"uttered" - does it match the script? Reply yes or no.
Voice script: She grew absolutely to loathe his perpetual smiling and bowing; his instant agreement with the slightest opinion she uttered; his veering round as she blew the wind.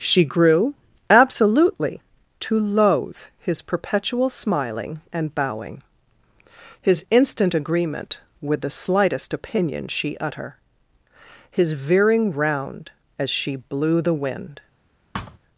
no